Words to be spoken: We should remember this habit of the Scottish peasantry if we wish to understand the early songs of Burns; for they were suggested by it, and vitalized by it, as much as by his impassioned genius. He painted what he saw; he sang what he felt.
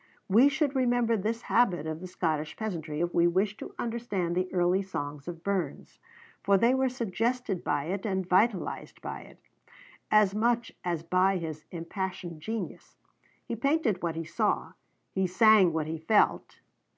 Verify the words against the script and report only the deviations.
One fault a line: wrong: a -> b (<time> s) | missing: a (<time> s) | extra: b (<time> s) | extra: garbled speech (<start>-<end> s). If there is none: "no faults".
no faults